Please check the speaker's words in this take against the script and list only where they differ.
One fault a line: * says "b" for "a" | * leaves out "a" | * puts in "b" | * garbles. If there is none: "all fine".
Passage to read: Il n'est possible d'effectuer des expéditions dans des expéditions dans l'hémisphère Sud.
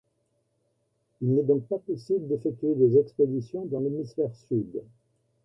* puts in "donc pas"
* leaves out "des expéditions dans"